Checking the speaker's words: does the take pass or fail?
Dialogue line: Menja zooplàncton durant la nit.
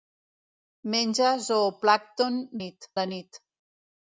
fail